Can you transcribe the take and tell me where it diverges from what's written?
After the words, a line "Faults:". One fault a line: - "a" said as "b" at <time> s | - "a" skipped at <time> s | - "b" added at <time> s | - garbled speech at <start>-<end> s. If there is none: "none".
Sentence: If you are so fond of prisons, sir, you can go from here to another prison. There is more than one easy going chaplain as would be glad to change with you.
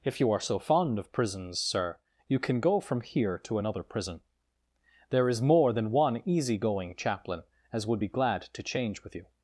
If you are so fond of prisons, sir, you can go from here to another prison. There is more than one easy going chaplain as would be glad to change with you.
Faults:
none